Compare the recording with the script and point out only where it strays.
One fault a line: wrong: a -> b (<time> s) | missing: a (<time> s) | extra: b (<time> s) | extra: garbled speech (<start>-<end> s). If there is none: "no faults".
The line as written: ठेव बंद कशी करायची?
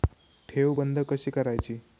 no faults